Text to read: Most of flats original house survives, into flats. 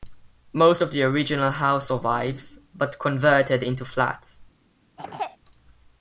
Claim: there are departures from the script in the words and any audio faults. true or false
true